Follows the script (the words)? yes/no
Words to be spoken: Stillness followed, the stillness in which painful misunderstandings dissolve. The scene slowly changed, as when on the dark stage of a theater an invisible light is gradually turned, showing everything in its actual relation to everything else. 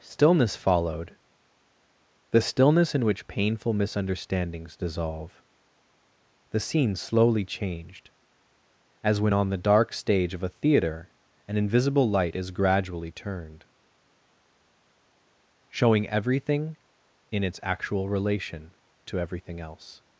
yes